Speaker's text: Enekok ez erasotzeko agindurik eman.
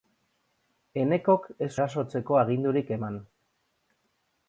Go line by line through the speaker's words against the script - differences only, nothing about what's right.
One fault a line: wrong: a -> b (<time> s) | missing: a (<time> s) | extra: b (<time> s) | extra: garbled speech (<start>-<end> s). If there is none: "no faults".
no faults